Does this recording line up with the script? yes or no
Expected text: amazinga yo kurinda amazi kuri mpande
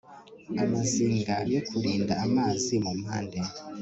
no